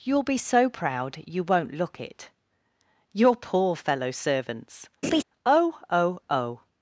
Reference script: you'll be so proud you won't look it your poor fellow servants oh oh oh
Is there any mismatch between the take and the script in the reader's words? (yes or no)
no